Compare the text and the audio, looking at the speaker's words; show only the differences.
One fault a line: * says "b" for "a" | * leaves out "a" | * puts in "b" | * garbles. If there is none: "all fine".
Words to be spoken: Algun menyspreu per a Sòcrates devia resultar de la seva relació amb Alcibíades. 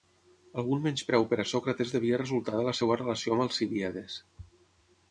all fine